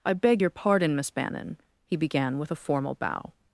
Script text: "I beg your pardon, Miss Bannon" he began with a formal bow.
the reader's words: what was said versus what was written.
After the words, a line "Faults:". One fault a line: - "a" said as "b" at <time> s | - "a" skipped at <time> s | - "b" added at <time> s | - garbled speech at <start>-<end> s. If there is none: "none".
"I beg your pardon, Miss Bannon" he began with a formal bow.
Faults:
none